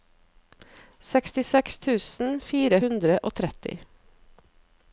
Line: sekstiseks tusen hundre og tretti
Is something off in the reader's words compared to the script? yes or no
yes